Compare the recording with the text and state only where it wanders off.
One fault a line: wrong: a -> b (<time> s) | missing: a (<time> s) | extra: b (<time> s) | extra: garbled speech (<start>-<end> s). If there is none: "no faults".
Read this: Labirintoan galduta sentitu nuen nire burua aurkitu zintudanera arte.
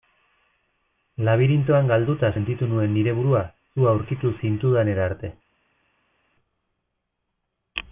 extra: zu (3.7 s)